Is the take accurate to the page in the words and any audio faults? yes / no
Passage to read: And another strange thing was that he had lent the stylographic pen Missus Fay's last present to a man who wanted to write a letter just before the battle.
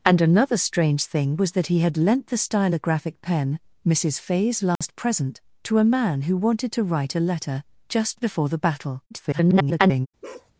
no